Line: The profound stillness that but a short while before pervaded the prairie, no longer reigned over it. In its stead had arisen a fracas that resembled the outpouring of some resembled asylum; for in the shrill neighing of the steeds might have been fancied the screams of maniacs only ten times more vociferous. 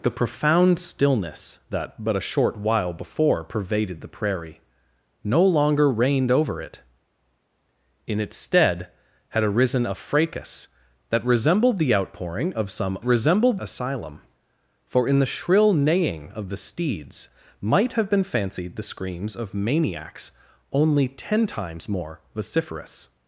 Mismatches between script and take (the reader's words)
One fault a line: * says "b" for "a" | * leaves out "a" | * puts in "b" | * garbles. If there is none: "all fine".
all fine